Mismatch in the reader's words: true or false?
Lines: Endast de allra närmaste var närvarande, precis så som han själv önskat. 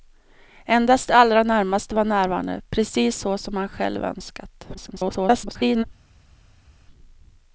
true